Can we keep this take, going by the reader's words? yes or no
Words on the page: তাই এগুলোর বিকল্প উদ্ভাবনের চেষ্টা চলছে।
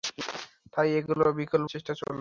no